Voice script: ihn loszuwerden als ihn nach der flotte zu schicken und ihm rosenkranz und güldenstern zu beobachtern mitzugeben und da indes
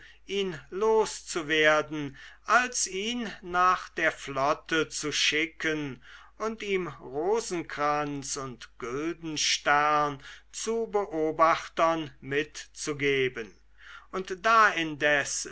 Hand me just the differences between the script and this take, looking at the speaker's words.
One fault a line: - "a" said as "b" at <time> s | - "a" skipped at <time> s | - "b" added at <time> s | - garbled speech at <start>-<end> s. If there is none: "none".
none